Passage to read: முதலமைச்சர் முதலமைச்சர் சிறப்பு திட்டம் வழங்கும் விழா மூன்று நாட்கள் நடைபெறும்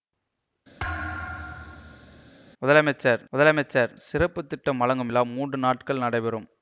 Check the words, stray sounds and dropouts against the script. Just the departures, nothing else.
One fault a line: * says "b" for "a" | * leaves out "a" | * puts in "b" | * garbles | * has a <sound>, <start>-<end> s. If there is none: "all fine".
* has a thud, 0.8-2.3 s